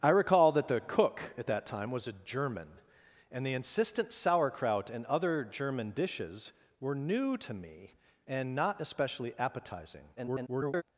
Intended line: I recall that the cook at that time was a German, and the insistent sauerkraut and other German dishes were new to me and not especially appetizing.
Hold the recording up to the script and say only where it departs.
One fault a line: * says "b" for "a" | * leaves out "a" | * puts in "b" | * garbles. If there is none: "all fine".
* garbles